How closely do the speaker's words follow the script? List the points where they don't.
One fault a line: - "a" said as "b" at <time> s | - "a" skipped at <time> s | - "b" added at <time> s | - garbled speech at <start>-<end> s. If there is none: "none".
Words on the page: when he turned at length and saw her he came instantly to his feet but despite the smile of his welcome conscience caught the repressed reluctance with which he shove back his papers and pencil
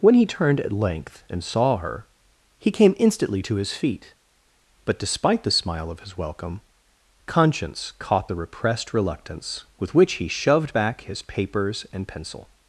- "shove" said as "shoved" at 10.3 s